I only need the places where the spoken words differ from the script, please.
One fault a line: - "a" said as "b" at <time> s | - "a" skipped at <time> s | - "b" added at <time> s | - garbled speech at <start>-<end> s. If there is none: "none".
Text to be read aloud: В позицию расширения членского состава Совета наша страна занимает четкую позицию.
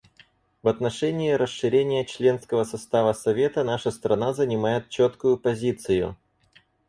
- "позицию" said as "отношении" at 0.7 s